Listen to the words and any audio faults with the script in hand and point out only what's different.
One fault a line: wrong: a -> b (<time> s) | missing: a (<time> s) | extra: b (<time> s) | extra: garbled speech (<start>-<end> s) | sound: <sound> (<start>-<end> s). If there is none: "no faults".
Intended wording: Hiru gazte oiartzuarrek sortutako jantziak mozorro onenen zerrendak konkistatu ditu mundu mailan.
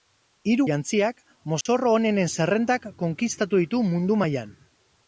missing: gazte oiartzuarrek sortutako (0.7 s)
sound: dropout (1.6-1.7 s)